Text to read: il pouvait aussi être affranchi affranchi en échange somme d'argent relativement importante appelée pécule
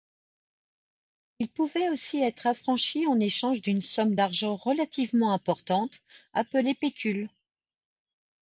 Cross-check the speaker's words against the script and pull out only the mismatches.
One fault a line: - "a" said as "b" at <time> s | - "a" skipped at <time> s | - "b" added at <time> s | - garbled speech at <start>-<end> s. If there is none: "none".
- "affranchi" skipped at 3.0 s
- "d'une" added at 3.6 s